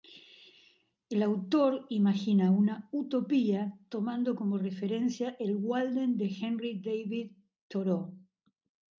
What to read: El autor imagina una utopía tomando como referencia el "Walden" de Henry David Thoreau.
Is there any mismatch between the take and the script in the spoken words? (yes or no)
no